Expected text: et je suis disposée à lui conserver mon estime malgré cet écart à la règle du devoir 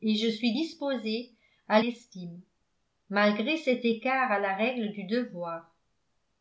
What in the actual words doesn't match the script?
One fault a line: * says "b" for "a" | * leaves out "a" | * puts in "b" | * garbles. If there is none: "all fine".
* leaves out "lui conserver mon"